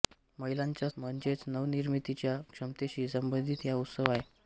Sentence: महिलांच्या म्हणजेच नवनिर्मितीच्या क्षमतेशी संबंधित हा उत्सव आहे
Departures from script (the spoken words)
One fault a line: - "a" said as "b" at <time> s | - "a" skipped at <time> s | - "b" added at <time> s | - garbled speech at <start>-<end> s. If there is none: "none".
none